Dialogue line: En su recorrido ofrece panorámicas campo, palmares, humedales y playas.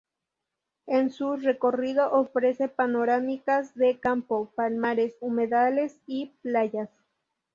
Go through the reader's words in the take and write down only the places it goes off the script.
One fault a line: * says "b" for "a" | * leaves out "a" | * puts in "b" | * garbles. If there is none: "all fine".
* puts in "de"